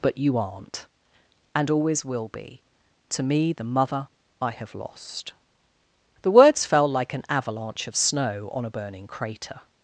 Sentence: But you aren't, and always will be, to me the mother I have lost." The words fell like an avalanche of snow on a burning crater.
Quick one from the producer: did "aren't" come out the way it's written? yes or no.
yes